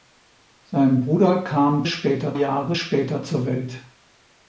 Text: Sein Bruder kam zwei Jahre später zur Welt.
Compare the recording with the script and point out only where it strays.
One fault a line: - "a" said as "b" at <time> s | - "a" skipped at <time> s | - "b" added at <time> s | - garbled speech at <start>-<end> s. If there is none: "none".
- "zwei" said as "später" at 1.8 s